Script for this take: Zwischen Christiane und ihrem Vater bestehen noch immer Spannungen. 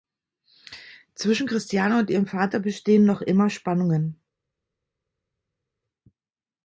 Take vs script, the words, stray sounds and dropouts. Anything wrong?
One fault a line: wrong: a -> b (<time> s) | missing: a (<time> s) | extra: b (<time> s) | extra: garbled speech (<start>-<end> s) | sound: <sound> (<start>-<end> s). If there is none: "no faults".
no faults